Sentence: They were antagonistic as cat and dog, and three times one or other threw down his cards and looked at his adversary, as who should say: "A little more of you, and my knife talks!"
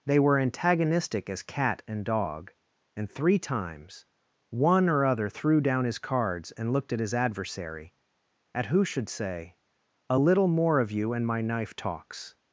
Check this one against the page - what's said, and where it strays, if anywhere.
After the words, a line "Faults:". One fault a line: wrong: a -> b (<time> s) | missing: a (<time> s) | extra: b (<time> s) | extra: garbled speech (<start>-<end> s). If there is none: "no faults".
They were antagonistic as cat and dog, and three times one or other threw down his cards and looked at his adversary, at who should say: "A little more of you, and my knife talks!"
Faults:
wrong: as -> at (8.5 s)